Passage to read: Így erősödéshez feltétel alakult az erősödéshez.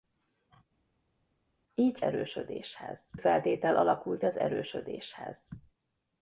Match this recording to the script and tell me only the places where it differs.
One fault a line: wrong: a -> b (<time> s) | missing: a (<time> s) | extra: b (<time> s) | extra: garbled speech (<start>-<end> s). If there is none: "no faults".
no faults